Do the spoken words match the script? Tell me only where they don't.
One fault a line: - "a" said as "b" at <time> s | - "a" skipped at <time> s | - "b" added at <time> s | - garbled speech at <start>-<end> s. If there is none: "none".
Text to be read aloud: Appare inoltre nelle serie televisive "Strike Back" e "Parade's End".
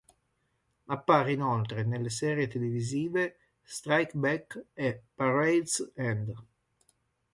none